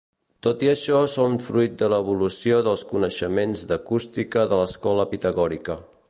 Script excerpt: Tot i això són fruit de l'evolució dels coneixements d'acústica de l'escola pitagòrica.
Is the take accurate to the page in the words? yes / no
yes